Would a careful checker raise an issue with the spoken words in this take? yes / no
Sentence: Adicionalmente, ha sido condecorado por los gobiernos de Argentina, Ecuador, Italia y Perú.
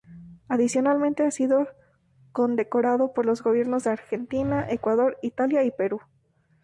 no